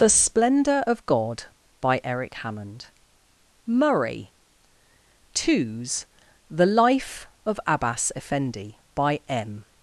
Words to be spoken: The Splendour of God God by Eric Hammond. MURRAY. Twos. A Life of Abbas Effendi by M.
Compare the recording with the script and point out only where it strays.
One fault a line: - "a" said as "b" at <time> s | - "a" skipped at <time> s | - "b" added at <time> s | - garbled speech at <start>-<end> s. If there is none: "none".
- "God" skipped at 1.4 s
- "A" said as "The" at 6.5 s